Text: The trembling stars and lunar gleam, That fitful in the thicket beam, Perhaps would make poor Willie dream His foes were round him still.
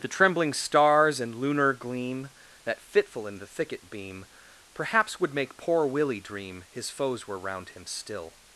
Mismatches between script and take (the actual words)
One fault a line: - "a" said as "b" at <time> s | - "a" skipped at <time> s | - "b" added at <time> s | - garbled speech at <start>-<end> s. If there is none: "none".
none